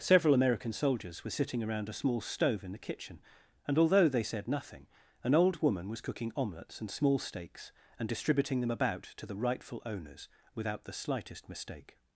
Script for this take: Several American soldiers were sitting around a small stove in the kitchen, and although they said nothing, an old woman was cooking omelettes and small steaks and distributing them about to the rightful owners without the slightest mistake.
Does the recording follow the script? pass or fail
pass